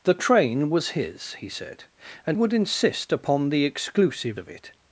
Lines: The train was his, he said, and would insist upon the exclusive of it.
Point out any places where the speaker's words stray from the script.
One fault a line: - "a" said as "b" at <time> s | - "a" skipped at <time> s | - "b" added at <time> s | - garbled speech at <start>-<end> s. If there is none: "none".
none